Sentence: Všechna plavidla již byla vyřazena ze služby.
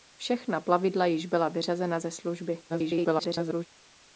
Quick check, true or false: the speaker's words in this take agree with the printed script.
false